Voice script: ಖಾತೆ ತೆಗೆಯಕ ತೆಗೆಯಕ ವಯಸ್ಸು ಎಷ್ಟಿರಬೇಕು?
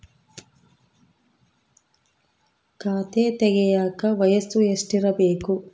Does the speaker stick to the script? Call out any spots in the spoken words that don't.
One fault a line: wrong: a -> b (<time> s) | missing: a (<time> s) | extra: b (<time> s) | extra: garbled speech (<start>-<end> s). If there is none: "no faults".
missing: ತೆಗೆಯಕ (4.0 s)